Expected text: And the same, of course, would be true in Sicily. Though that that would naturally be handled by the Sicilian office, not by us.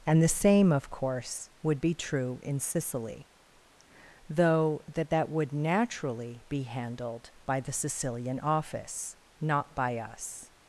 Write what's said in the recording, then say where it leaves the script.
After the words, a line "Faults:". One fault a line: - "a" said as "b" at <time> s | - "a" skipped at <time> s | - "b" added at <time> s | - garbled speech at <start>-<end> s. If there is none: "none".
And the same, of course, would be true in Sicily. Though that that would naturally be handled by the Sicilian office, not by us.
Faults:
none